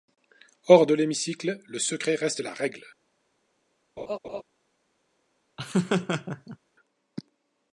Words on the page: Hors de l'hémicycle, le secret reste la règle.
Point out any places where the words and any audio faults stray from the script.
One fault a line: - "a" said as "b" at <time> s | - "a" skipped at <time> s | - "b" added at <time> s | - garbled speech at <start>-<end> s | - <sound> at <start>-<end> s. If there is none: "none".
- laugh at 4.0-4.4 s
- laugh at 5.6-6.6 s